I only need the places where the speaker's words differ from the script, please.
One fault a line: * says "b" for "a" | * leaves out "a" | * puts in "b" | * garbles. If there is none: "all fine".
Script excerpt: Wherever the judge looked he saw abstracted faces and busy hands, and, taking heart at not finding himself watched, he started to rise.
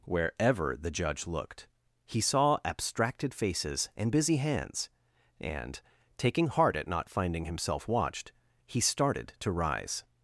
all fine